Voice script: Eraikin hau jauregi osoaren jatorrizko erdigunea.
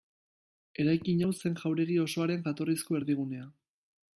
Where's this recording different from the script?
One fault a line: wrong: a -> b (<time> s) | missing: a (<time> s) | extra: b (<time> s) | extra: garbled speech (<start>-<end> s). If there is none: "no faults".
extra: zen (1.4 s)